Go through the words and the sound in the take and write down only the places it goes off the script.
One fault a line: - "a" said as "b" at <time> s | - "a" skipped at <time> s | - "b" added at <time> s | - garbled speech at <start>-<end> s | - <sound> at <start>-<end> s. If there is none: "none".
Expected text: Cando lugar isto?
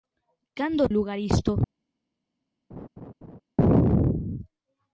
- laugh at 2.7-3.4 s